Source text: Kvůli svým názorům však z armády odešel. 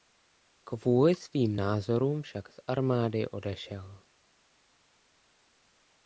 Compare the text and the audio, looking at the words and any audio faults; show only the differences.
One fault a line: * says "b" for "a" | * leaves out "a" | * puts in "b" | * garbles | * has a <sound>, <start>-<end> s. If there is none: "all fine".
all fine